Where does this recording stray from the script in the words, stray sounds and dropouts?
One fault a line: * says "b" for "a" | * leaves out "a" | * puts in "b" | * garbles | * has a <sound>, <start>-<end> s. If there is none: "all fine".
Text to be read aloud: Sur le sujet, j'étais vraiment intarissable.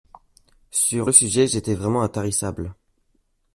all fine